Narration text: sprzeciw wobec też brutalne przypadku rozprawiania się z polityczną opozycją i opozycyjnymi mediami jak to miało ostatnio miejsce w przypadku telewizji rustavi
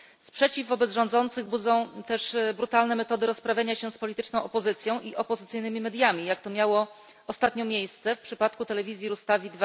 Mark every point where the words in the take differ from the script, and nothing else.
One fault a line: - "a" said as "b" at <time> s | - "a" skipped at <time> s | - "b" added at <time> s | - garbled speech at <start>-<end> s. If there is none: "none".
- "rządzących budzą" added at 0.9 s
- "przypadku" said as "metody" at 3.0 s